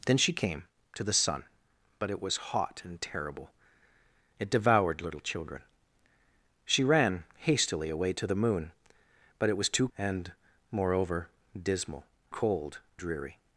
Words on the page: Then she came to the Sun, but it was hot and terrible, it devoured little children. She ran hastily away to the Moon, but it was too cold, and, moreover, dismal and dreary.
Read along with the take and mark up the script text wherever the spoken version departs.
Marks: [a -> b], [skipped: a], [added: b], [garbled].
Then she came to the Sun, but it was hot and terrible, it devoured little children. She ran hastily away to the Moon, but it was too [skipped: cold,] and, moreover, dismal [and -> cold] dreary.